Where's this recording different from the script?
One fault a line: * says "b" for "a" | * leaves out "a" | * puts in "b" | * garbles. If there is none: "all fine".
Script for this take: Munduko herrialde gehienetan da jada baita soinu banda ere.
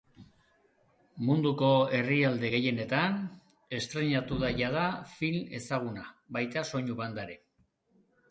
* puts in "estreinatu"
* puts in "film ezaguna"